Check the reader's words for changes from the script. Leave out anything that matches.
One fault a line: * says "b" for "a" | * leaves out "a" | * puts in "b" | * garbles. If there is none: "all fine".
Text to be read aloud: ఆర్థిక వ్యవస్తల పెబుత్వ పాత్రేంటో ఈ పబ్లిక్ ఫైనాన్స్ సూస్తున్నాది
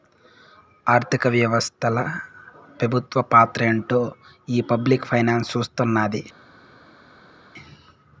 all fine